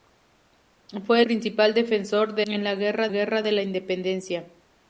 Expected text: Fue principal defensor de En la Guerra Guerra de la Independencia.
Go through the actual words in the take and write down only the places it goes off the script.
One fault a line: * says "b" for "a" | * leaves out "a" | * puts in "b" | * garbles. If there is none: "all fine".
all fine